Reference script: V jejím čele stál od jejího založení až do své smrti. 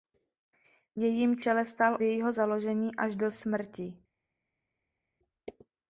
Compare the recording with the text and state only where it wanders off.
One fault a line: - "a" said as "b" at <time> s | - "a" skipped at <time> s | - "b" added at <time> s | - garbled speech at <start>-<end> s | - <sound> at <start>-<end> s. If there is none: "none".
- "od" skipped at 2.0 s
- "své" skipped at 3.3 s